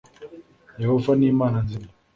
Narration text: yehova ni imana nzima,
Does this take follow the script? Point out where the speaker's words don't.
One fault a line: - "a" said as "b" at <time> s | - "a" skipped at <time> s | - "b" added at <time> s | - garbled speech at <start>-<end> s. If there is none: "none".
none